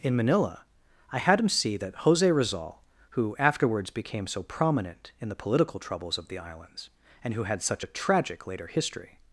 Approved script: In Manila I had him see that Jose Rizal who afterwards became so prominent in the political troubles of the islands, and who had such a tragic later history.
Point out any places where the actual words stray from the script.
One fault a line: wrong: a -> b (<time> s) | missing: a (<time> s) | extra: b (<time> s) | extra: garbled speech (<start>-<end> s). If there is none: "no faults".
no faults